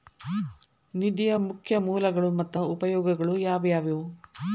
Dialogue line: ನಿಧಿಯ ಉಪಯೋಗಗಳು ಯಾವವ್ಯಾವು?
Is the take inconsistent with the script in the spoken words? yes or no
yes